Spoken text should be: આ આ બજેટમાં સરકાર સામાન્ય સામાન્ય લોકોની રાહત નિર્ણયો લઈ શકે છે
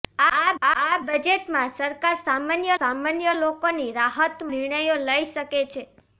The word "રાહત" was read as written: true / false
true